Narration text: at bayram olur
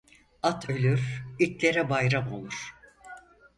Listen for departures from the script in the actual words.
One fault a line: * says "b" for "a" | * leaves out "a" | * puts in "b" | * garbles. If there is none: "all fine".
* puts in "ölür itlere"